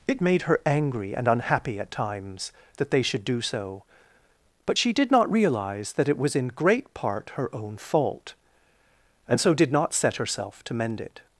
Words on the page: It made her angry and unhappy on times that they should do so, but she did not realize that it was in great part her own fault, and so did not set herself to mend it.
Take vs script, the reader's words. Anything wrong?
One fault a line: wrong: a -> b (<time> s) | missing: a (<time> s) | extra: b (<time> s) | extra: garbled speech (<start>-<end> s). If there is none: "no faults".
wrong: on -> at (1.8 s)